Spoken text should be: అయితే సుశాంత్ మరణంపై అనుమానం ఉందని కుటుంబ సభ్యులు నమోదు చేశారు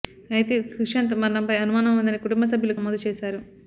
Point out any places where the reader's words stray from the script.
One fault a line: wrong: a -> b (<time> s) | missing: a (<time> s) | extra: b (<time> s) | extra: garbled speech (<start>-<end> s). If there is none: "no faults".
no faults